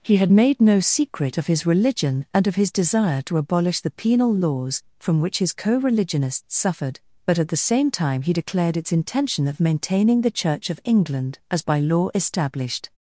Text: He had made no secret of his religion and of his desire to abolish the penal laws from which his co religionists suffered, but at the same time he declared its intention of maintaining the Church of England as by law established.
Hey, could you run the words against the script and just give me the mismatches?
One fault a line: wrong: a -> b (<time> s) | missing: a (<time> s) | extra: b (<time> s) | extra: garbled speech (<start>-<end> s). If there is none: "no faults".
no faults